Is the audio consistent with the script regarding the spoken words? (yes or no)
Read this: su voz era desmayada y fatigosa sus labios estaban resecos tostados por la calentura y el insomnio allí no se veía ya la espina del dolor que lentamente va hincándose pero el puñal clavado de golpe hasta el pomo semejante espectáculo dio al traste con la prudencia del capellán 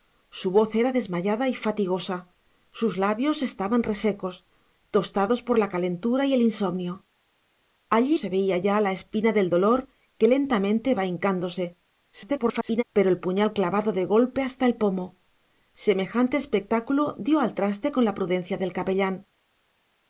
no